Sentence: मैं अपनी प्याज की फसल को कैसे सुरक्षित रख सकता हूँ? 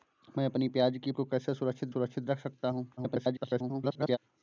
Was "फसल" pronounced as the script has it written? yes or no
no